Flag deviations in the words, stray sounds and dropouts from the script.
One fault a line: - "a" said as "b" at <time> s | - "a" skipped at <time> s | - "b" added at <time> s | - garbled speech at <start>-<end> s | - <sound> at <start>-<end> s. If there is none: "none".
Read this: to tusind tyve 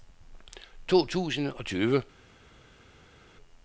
- "og" added at 1.5 s